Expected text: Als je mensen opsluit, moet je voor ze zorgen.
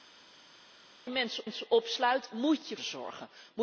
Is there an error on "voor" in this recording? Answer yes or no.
yes